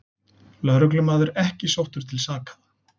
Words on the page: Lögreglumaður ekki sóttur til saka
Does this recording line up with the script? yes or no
yes